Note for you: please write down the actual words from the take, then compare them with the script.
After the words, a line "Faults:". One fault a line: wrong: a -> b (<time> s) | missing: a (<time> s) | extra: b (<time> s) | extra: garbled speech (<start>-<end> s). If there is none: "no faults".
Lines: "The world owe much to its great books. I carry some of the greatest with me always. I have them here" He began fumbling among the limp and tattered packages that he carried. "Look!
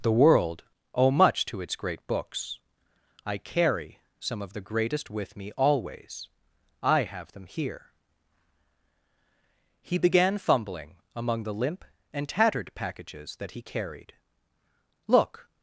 "The world owe much to its great books. I carry some of the greatest with me always. I have them here" He began fumbling among the limp and tattered packages that he carried. "Look!
Faults:
no faults